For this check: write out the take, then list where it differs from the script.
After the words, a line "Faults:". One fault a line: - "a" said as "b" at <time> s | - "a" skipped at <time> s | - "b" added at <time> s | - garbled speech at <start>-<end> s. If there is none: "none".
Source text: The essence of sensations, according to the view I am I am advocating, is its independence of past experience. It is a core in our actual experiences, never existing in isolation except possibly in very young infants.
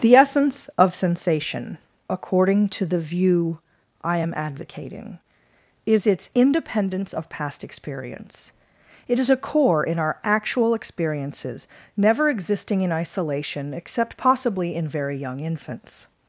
The essence of sensation, according to the view I am advocating, is its independence of past experience. It is a core in our actual experiences, never existing in isolation except possibly in very young infants.
Faults:
- "sensations" said as "sensation" at 0.9 s
- "I am" skipped at 4.3 s